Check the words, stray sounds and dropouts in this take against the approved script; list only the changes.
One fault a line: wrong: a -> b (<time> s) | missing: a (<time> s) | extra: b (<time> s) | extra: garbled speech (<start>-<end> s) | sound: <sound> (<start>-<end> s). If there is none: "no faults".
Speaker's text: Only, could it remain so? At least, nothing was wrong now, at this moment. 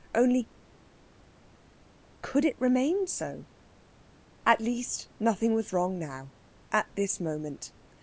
no faults